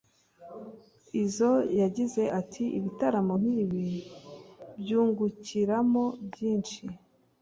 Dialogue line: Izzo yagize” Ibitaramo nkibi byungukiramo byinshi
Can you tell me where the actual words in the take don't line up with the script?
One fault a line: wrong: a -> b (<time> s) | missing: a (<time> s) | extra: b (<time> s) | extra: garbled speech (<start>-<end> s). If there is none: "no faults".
extra: ati (2.4 s)